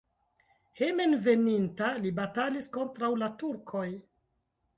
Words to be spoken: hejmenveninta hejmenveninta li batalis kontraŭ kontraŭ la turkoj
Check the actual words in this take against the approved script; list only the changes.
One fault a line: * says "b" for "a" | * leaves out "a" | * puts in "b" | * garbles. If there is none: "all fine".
* leaves out "hejmenveninta"
* leaves out "kontraŭ"